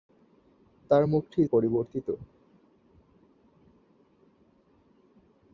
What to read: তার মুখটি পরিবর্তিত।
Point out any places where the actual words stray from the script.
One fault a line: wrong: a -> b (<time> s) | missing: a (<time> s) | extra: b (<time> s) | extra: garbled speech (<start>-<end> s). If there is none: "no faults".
no faults